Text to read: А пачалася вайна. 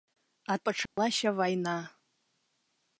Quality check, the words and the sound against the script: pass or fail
fail